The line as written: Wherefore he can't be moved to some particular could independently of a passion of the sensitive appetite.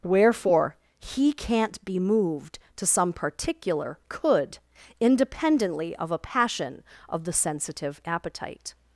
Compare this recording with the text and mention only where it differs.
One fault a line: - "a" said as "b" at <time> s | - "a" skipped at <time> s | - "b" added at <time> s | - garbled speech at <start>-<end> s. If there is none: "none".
none